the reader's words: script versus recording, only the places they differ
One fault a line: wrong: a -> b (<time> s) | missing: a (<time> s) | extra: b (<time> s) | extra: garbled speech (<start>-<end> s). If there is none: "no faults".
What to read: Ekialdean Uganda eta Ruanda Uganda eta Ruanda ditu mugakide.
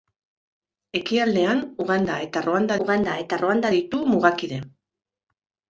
no faults